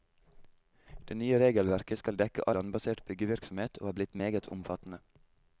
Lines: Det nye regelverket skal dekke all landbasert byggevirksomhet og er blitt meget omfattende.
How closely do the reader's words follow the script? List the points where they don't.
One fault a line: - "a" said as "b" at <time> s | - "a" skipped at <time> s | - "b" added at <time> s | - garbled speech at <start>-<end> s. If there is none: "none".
- "all" skipped at 2.5 s